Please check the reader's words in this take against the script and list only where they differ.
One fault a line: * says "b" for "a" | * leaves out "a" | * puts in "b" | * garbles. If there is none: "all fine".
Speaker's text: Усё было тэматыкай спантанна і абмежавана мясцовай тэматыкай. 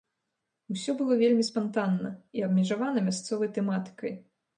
* says "вельмі" for "тэматыкай"